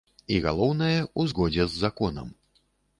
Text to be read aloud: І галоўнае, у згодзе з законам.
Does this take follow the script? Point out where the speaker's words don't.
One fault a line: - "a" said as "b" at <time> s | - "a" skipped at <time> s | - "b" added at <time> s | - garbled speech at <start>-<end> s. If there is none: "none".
none